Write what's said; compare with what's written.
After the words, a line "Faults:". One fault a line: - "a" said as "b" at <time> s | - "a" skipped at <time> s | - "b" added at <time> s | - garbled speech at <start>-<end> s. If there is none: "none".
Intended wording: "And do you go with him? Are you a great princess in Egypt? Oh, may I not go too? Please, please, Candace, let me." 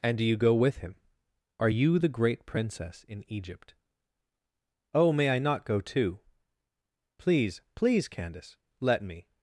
"And do you go with him? Are you the great princess in Egypt? Oh, may I not go too? Please, please, Candace, let me."
Faults:
- "a" said as "the" at 2.0 s